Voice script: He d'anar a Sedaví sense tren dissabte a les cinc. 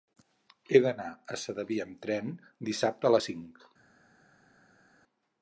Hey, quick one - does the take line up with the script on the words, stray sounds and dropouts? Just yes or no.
no